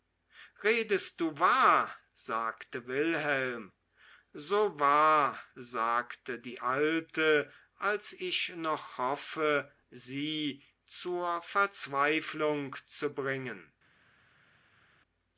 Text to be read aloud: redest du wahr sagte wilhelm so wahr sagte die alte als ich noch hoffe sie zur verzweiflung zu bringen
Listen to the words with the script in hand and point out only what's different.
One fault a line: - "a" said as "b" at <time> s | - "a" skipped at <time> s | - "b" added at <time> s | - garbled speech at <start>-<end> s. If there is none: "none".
none